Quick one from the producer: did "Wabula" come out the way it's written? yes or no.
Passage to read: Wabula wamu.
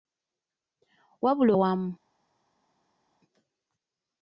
yes